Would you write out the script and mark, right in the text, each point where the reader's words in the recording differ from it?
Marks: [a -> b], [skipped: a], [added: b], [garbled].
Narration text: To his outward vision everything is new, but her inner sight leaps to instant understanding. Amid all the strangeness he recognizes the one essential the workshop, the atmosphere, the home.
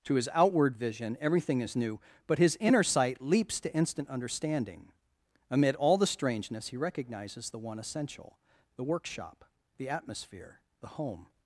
To his outward vision everything is new, but [her -> his] inner sight leaps to instant understanding. Amid all the strangeness he recognizes the one essential the workshop, the atmosphere, the home.